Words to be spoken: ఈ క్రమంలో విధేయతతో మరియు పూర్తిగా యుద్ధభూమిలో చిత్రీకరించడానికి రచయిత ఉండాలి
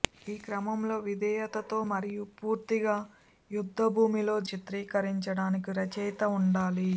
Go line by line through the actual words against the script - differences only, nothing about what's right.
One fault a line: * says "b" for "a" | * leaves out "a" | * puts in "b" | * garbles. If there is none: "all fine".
all fine